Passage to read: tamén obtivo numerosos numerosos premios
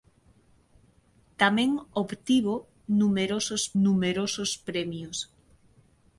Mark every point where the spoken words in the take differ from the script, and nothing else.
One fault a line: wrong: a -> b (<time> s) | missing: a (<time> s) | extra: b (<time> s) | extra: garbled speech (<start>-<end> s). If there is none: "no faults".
no faults